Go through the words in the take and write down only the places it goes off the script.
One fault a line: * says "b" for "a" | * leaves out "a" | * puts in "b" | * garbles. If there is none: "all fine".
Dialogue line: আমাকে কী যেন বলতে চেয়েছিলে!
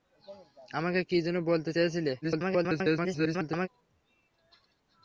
* garbles